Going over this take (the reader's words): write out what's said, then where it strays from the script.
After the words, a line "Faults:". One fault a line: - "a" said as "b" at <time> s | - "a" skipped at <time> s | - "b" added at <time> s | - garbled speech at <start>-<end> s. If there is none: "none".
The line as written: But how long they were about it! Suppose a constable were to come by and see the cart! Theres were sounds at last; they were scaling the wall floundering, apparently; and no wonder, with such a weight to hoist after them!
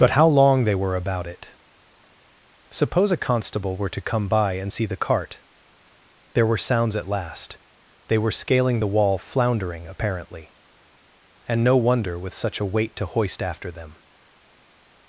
But how long they were about it! Suppose a constable were to come by and see the cart! There were sounds at last; they were scaling the wall floundering, apparently; and no wonder, with such a weight to hoist after them!
Faults:
- "Theres" said as "There" at 6.3 s